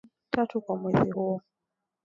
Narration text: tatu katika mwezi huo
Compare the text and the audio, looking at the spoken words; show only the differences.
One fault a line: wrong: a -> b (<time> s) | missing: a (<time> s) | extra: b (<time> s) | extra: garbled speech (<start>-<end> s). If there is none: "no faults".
wrong: katika -> kwa (0.6 s)